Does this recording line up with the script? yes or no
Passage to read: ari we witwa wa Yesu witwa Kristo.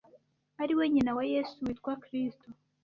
no